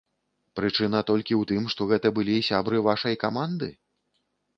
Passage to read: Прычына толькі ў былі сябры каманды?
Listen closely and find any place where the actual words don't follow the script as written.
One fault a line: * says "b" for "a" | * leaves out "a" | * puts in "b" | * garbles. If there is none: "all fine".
* puts in "тым што гэта"
* puts in "вашай"